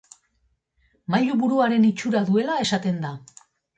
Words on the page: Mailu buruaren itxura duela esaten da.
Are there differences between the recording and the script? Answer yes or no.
no